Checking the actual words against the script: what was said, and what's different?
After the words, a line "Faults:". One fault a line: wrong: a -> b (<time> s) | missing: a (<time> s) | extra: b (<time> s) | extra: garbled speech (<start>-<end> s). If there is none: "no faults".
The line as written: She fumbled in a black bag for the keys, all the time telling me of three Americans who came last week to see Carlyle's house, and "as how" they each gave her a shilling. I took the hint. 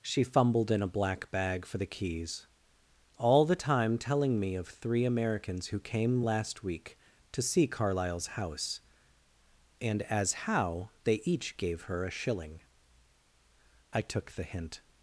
She fumbled in a black bag for the keys, all the time telling me of three Americans who came last week to see Carlyle's house, and "as how" they each gave her a shilling. I took the hint.
Faults:
no faults